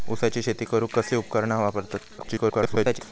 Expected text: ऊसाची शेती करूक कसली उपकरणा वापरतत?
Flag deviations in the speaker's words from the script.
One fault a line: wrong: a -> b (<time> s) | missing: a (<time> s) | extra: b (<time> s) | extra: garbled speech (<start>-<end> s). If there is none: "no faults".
extra: garbled speech (2.2-3.0 s)